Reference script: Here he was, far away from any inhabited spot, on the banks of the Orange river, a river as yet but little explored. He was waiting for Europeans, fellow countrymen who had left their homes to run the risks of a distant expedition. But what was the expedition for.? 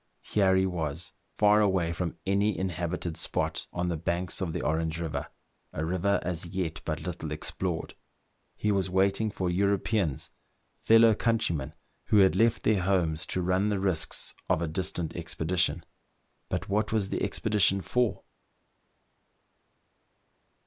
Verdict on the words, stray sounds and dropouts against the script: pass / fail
pass